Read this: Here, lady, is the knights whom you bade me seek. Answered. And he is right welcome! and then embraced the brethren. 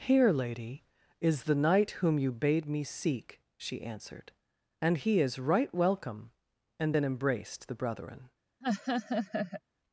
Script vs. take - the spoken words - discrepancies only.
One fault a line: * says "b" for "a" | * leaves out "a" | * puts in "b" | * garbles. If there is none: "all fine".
* says "knight" for "knights"
* puts in "She"